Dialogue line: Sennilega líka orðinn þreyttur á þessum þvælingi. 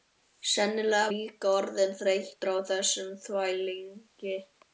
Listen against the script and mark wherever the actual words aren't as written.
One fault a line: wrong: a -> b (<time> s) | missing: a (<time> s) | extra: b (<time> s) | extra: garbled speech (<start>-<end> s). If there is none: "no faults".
no faults